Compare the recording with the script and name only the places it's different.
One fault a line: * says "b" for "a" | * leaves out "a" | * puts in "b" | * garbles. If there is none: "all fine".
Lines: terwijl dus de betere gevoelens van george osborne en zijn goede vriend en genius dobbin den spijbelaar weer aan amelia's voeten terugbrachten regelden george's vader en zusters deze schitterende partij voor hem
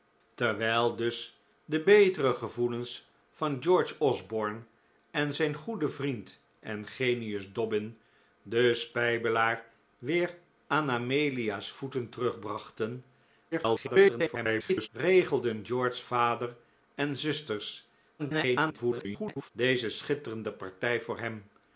* garbles
* garbles